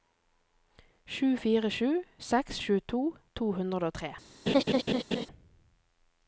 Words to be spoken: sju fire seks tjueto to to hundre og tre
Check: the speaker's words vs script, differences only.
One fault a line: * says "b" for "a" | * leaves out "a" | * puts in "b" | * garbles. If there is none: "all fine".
* puts in "sju"
* leaves out "to"